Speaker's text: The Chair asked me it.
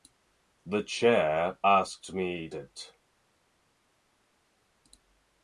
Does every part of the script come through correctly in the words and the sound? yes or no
yes